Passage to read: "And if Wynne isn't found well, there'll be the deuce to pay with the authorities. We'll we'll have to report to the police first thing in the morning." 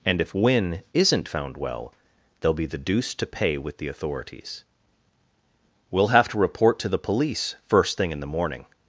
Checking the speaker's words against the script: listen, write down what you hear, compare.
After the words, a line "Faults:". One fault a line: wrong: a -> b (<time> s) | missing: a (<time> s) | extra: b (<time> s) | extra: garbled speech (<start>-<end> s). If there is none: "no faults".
"And if Wynne isn't found well, there'll be the deuce to pay with the authorities. We'll have to report to the police first thing in the morning."
Faults:
missing: we'll (6.1 s)